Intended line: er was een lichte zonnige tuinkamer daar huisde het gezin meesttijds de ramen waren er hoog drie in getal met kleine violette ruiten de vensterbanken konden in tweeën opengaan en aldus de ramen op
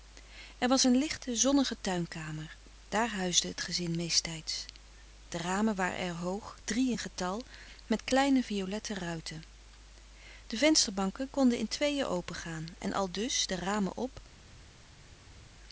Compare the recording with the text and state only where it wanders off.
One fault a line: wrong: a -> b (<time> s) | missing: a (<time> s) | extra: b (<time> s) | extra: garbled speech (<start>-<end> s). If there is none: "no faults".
no faults